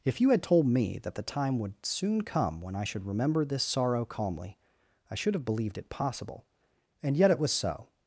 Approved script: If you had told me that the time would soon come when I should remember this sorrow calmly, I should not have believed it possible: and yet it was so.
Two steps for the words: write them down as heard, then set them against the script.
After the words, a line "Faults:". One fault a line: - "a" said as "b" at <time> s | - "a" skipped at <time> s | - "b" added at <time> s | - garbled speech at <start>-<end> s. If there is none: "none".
If you had told me that the time would soon come when I should remember this sorrow calmly, I should have believed it possible: and yet it was so.
Faults:
- "not" skipped at 5.3 s